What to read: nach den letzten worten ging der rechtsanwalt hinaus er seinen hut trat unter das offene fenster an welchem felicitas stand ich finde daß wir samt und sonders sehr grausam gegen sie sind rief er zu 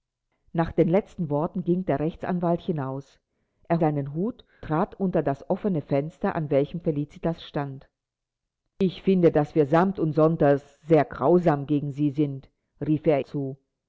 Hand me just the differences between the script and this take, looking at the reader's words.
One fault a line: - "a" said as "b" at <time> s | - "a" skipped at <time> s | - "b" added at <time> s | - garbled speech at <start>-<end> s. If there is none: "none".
none